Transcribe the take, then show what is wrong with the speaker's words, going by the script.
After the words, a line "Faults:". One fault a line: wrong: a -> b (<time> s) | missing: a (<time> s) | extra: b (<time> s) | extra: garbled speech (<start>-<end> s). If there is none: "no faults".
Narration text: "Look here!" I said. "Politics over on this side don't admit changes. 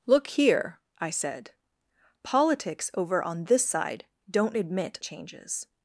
"Look here!" I said. "Politics over on this side don't admit changes.
Faults:
no faults